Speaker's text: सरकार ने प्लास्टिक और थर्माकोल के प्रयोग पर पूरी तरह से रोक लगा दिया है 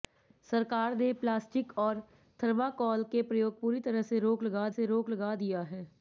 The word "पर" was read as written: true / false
false